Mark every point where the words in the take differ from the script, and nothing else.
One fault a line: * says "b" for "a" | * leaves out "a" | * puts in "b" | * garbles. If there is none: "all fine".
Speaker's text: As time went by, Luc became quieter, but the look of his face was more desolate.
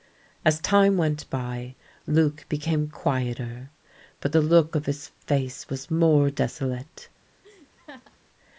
all fine